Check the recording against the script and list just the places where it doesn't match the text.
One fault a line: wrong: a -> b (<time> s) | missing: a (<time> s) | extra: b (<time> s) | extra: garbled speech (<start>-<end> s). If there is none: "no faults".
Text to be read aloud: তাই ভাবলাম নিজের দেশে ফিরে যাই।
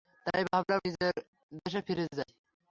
no faults